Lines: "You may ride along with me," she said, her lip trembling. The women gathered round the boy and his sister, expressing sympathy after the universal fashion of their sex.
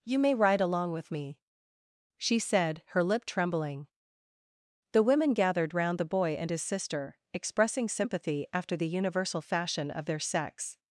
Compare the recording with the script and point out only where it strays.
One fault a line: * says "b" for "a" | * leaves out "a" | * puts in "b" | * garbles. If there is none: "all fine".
all fine